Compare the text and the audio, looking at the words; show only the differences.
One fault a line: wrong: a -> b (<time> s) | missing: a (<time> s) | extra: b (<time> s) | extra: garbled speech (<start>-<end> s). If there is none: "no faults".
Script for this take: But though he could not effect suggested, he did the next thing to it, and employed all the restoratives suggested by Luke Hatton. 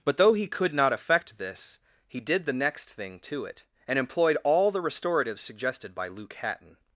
wrong: suggested -> this (1.4 s)